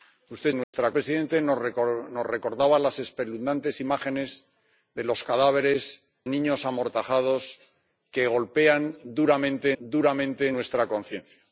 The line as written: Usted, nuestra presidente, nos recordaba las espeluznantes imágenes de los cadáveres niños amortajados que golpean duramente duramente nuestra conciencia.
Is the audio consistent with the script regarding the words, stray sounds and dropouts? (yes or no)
no